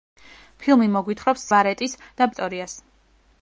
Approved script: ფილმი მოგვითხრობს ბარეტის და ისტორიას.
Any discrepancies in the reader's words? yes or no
no